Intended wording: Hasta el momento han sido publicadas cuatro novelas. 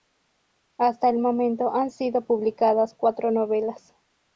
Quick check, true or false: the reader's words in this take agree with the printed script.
true